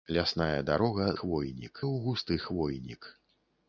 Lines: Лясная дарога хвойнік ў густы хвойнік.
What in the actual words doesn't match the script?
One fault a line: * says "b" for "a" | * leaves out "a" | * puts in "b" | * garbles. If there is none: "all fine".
all fine